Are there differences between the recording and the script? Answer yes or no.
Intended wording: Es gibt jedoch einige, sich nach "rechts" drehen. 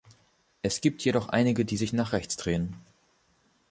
yes